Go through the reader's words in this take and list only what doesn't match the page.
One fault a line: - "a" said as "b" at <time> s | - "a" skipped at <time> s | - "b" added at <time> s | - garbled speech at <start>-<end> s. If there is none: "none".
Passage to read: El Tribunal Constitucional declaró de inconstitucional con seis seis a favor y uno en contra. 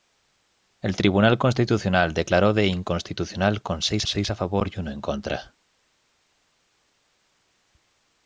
none